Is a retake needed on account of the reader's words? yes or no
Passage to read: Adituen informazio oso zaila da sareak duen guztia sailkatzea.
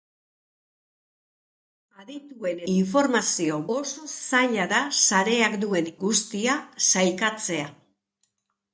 no